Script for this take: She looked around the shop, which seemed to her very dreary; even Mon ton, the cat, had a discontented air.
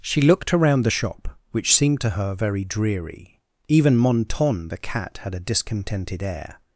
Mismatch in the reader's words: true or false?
false